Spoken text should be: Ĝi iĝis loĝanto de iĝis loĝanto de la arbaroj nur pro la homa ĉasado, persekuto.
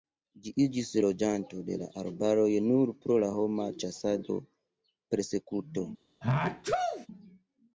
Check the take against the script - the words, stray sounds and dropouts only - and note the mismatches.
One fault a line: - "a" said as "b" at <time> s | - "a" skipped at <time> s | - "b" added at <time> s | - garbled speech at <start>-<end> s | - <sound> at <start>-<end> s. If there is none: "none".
- "iĝis loĝanto de" skipped at 1.8 s
- sneeze at 6.2-7.1 s